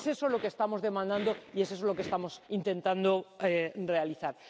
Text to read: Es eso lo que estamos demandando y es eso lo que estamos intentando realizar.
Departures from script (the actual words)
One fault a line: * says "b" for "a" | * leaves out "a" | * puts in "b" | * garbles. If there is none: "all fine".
all fine